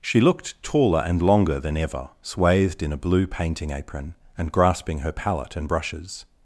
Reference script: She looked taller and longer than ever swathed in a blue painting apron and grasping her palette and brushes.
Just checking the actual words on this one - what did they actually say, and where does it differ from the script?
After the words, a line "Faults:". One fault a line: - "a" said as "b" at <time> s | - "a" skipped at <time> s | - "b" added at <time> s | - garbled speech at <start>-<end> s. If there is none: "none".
She looked taller and longer than ever swathed in a blue painting apron and grasping her palette and brushes.
Faults:
none